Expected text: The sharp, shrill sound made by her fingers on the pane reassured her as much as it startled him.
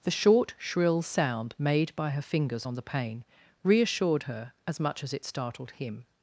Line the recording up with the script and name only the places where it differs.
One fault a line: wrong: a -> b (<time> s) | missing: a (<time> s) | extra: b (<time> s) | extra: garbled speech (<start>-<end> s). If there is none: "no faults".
wrong: sharp -> short (0.1 s)